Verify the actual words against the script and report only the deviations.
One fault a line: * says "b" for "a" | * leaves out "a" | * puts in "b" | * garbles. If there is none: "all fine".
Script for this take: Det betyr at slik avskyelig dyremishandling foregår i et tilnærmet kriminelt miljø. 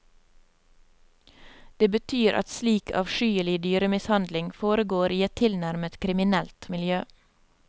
all fine